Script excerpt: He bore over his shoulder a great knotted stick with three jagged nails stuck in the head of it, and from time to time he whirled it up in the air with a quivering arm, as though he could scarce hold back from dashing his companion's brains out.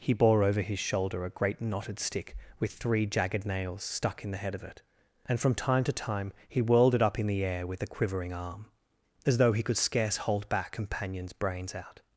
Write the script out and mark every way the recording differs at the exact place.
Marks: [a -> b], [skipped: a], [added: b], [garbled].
He bore over his shoulder a great knotted stick with three jagged nails stuck in the head of it, and from time to time he whirled it up in the air with a quivering arm, as though he could scarce hold back [skipped: from dashing his] companion's brains out.